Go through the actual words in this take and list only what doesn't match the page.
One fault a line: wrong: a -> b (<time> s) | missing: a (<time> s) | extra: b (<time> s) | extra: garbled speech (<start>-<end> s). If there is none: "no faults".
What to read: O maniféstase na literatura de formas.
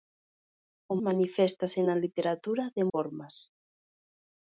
no faults